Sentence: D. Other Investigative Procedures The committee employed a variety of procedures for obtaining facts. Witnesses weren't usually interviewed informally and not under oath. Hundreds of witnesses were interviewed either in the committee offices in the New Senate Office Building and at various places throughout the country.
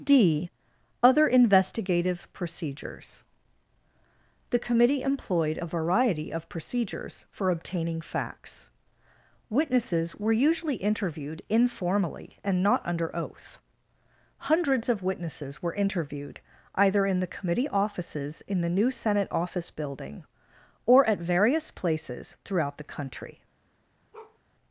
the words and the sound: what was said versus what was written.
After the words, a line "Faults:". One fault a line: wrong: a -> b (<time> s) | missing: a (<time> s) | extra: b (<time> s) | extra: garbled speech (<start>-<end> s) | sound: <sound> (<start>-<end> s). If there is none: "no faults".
D. Other Investigative Procedures The committee employed a variety of procedures for obtaining facts. Witnesses were usually interviewed informally and not under oath. Hundreds of witnesses were interviewed either in the committee offices in the New Senate Office Building or at various places throughout the country.
Faults:
wrong: weren't -> were (10.1 s)
wrong: and -> or (20.9 s)
sound: bark (24.1-24.4 s)